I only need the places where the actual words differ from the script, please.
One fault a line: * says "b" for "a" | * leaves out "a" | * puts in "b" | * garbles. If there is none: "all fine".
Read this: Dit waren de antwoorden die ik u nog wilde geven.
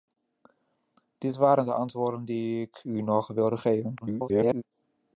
* garbles